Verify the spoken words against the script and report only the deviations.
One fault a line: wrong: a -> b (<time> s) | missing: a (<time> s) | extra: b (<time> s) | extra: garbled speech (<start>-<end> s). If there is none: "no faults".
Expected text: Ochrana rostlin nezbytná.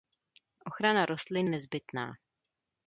no faults